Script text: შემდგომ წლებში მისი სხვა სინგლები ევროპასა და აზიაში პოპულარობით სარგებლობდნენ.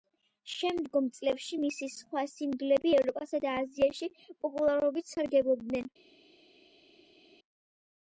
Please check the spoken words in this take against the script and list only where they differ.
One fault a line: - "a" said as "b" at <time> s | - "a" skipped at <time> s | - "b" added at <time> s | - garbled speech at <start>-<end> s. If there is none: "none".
none